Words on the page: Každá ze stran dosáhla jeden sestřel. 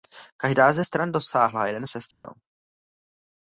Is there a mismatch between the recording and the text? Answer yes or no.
no